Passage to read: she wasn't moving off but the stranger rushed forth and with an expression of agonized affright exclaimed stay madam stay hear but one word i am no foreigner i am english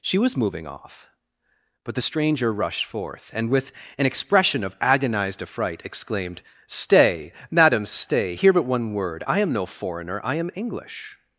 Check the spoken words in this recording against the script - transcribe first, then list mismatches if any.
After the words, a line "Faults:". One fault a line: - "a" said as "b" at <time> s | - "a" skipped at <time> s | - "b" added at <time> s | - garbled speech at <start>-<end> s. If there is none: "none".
she was moving off but the stranger rushed forth and with an expression of agonized affright exclaimed stay madam stay hear but one word i am no foreigner i am english
Faults:
- "wasn't" said as "was" at 0.2 s